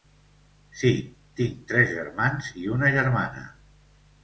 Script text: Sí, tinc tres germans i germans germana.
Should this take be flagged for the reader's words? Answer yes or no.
yes